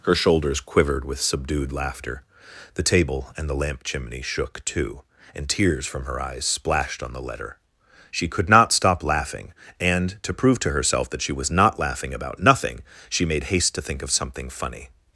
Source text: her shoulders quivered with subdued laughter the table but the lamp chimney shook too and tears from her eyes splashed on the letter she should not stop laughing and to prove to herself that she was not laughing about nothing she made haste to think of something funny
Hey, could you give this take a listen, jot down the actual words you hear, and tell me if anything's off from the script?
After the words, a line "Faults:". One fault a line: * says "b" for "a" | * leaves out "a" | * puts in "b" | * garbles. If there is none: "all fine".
her shoulders quivered with subdued laughter the table and the lamp chimney shook too and tears from her eyes splashed on the letter she could not stop laughing and to prove to herself that she was not laughing about nothing she made haste to think of something funny
Faults:
* says "and" for "but"
* says "could" for "should"